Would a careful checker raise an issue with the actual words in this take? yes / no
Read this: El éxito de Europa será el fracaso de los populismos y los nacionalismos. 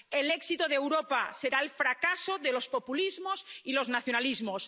no